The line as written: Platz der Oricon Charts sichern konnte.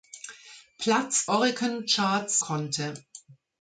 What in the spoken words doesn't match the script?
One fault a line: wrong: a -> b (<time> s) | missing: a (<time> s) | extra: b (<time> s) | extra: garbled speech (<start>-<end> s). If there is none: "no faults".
missing: der (1.3 s)
missing: sichern (2.4 s)